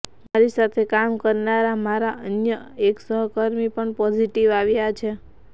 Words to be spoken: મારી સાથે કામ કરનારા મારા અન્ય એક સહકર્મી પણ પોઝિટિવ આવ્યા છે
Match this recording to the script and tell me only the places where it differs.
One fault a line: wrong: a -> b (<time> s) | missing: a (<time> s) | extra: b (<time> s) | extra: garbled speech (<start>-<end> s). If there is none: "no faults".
no faults